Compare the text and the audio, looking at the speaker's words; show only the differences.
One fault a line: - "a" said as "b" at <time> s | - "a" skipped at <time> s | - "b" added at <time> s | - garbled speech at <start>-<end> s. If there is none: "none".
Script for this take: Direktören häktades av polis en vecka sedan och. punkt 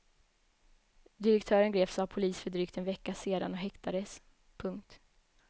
- "häktades" said as "greps" at 1.7 s
- "för drygt" added at 2.4 s
- "häktades" added at 3.6 s